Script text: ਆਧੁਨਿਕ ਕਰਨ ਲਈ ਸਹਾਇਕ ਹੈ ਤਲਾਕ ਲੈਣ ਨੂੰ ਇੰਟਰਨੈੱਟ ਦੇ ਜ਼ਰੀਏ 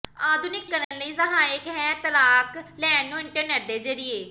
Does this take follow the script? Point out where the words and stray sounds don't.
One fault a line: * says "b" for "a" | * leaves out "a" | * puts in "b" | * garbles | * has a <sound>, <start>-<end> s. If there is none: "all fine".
* has a dropout, 0.8-0.9 s